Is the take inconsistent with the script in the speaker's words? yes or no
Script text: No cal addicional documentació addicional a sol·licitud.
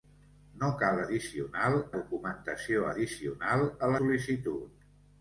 no